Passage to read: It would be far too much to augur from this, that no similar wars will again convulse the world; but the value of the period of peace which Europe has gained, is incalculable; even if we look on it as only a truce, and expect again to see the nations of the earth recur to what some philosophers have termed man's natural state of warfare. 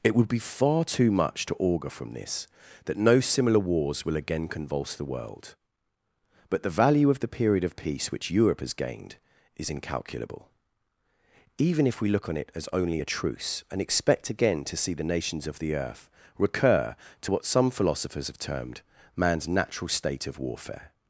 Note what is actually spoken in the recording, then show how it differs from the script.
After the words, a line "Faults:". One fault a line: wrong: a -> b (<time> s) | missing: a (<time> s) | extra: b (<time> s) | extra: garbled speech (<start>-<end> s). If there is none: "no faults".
It would be far too much to augur from this, that no similar wars will again convulse the world; but the value of the period of peace which Europe has gained, is incalculable; even if we look on it as only a truce, and expect again to see the nations of the earth recur to what some philosophers have termed man's natural state of warfare.
Faults:
no faults